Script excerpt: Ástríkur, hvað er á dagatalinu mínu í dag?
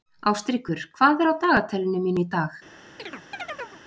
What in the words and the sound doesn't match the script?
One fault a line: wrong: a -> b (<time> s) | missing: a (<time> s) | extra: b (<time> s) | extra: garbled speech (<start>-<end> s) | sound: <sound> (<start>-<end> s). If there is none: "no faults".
sound: chirp (3.0-3.8 s)